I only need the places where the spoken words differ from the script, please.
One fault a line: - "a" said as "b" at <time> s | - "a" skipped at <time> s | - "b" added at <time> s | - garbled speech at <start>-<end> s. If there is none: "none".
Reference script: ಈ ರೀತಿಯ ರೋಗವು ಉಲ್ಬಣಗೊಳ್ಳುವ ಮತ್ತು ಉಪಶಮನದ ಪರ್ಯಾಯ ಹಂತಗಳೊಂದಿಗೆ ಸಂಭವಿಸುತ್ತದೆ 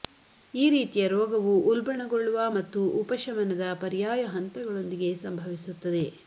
none